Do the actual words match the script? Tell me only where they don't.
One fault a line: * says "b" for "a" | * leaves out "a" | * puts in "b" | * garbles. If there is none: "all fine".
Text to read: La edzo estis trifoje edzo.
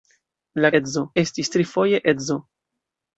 all fine